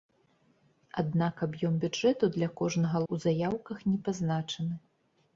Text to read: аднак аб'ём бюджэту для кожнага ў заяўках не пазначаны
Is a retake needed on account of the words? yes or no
no